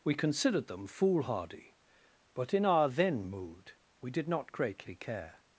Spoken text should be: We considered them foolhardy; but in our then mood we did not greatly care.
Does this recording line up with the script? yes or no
yes